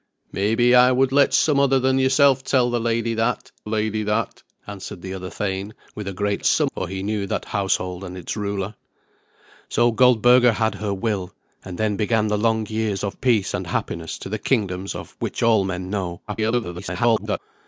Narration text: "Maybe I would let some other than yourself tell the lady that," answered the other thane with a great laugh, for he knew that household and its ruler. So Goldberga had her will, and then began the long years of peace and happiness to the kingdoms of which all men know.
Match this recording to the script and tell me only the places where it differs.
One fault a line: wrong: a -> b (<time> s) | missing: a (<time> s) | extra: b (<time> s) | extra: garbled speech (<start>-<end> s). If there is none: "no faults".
extra: lady that (3.7 s)
wrong: laugh -> some (6.4 s)
extra: garbled speech (16.3-17.4 s)